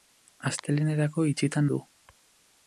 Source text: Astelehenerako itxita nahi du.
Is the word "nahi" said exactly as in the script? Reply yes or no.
no